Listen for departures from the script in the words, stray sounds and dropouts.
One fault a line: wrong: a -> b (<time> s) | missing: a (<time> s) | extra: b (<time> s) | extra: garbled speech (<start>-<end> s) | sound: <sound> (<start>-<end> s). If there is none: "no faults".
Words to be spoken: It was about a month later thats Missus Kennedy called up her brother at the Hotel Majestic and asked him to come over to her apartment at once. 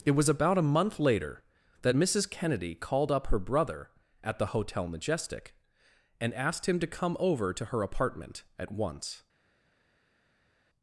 wrong: thats -> that (1.8 s)